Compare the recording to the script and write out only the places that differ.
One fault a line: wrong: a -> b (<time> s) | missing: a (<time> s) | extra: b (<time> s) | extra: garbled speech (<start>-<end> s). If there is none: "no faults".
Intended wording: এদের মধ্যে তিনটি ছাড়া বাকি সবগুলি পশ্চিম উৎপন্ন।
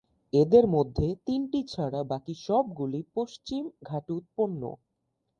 extra: ঘাটে (3.9 s)